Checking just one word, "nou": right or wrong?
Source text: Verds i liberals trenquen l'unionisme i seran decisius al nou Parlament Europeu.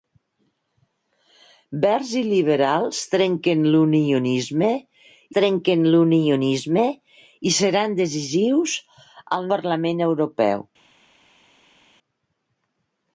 wrong